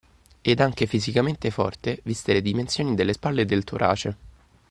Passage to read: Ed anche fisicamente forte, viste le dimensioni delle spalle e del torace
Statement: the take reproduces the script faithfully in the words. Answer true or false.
true